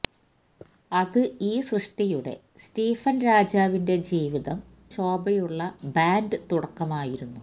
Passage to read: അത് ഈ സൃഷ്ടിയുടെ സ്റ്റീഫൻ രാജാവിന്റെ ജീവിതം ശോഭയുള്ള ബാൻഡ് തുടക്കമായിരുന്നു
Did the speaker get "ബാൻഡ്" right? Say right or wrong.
right